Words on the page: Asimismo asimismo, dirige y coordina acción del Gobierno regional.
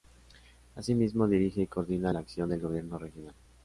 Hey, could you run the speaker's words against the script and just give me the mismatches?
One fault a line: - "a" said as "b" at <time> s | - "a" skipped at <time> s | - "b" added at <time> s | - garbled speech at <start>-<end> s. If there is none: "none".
- "asimismo" skipped at 1.3 s
- "la" added at 2.1 s